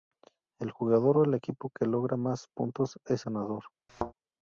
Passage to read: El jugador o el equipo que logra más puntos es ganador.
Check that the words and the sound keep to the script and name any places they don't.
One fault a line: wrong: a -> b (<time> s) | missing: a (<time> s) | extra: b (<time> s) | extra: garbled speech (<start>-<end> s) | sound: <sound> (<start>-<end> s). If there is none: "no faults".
sound: thud (3.9-4.1 s)